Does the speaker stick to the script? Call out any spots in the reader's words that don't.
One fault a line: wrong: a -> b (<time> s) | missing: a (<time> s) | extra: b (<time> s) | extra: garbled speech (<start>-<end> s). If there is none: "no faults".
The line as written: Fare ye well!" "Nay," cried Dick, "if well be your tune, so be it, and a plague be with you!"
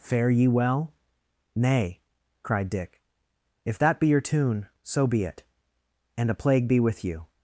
wrong: well -> that (3.8 s)